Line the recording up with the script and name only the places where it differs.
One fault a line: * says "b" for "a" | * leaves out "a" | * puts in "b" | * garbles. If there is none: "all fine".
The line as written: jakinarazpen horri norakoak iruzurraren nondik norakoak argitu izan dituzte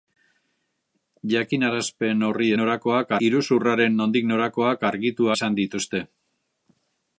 all fine